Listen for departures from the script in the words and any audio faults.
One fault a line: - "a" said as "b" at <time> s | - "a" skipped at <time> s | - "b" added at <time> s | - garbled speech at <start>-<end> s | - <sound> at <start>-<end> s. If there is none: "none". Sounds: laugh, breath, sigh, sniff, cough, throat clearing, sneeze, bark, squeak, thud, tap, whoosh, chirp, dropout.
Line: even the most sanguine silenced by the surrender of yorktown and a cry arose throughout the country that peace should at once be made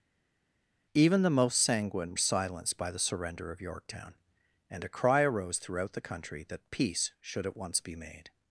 none